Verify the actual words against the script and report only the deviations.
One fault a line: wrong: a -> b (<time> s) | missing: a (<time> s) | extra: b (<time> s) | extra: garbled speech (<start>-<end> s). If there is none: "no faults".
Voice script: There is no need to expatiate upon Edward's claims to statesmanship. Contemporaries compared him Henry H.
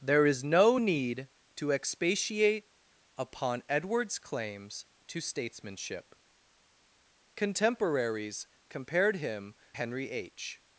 no faults